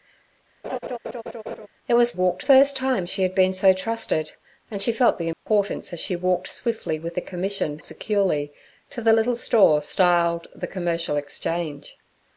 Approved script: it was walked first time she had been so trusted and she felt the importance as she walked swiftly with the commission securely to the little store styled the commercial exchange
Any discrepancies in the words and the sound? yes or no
yes